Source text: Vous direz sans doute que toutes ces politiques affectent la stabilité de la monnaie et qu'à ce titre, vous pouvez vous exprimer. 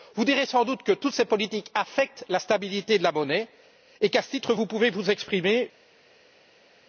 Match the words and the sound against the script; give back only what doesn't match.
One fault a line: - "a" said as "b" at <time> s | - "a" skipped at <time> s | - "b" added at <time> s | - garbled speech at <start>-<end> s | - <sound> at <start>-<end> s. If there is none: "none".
none